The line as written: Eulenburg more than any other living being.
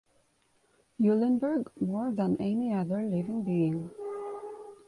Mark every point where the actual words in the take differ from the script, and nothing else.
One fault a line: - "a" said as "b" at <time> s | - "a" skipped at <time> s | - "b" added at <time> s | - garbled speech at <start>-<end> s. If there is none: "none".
none